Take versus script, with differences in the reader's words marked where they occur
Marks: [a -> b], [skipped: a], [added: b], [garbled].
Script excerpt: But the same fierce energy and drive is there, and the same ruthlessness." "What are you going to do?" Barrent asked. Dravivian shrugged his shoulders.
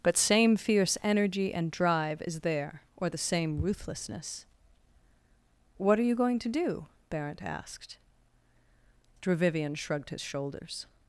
But [skipped: the] same fierce energy and drive is there, [and -> or] the same ruthlessness." "What are you going to do?" Barrent asked. Dravivian shrugged his shoulders.